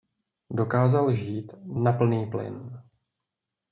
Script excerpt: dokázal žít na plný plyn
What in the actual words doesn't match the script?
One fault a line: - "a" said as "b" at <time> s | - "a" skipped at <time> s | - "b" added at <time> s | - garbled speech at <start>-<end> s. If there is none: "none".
none